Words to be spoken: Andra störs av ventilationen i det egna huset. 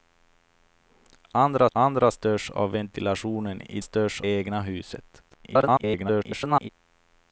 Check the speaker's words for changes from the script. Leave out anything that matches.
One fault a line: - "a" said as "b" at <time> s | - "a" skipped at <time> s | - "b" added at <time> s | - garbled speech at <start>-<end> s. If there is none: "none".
- "andra" added at 1.7 s
- "det" said as "störs" at 3.8 s
- garbled speech at 5.3-6.7 s